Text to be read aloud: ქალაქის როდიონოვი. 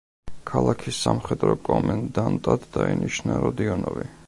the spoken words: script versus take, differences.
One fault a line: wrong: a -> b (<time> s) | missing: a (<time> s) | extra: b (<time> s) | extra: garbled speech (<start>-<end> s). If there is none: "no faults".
extra: სამხედრო კომენდანტად დაინიშნა (1.1 s)